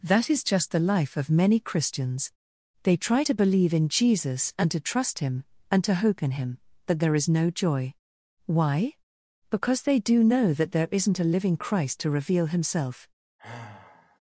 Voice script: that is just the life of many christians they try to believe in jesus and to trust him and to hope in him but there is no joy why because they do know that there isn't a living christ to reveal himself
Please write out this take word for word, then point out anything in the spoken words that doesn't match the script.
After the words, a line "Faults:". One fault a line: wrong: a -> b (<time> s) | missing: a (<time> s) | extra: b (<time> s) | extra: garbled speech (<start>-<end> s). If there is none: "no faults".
that is just the life of many christians they try to believe in jesus and to trust him and to hope in him but there is no joy why because they do know that there isn't a living christ to reveal himself
Faults:
no faults